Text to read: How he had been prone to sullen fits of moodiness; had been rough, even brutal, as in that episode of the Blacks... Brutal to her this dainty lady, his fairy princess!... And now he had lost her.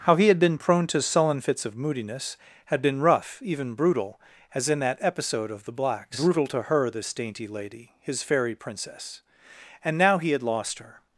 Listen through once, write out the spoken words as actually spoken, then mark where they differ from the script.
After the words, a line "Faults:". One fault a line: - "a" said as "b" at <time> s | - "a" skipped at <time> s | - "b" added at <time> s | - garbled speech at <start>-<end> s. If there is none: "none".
How he had been prone to sullen fits of moodiness; had been rough, even brutal, as in that episode of the Blacks... Brutal to her this dainty lady, his fairy princess!... And now he had lost her.
Faults:
none